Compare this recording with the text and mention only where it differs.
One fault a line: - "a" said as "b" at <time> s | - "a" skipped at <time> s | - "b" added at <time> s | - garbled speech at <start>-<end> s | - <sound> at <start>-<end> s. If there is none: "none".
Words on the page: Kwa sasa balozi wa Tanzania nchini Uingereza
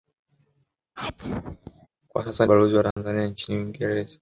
- sneeze at 1.0-1.9 s
- dropout at 2.9-3.0 s